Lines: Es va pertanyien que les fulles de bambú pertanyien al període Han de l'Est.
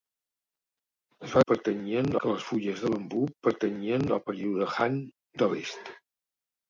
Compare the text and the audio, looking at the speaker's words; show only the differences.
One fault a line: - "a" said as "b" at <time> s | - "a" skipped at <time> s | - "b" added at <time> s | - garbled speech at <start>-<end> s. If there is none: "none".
none